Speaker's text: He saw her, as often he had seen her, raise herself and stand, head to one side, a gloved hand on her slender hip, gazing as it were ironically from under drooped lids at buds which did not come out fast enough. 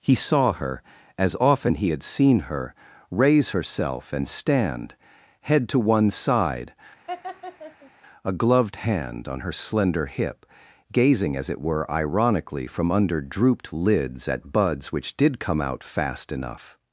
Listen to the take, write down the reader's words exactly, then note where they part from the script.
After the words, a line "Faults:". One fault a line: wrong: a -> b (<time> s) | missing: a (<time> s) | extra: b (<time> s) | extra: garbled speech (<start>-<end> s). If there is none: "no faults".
He saw her, as often he had seen her, raise herself and stand, head to one side, a gloved hand on her slender hip, gazing as it were ironically from under drooped lids at buds which did come out fast enough.
Faults:
missing: not (15.4 s)